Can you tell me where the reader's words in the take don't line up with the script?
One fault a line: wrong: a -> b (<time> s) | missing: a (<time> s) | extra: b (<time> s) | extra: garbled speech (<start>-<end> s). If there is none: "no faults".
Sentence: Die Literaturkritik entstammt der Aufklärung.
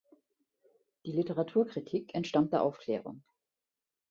no faults